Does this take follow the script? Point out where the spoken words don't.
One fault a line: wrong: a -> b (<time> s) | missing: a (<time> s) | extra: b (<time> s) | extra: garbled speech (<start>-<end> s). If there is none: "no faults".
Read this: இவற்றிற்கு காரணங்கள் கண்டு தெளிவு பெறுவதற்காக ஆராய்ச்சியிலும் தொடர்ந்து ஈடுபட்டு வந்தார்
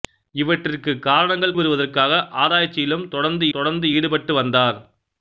missing: கண்டு தெளிவு (1.5 s)
extra: தொடர்ந்து (3.5 s)